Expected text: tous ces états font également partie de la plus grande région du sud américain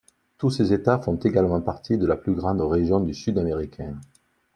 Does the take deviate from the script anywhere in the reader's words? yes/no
no